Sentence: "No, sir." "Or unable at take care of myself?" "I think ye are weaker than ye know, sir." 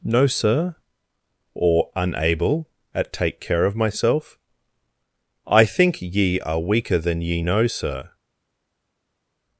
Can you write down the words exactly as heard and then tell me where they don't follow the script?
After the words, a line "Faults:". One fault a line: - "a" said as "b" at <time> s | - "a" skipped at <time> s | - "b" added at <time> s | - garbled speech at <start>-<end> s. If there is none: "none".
"No, sir." "Or unable at take care of myself?" "I think ye are weaker than ye know, sir."
Faults:
none